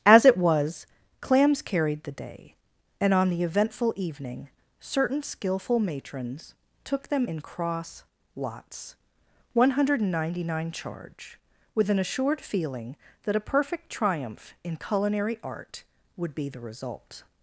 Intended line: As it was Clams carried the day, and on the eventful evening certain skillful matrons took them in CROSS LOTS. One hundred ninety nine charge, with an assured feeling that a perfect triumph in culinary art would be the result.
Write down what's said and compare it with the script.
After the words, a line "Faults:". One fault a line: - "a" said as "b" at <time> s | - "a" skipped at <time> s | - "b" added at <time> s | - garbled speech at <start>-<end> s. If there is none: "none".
As it was Clams carried the day, and on the eventful evening certain skillful matrons took them in CROSS LOTS. One hundred ninety nine charge, with an assured feeling that a perfect triumph in culinary art would be the result.
Faults:
none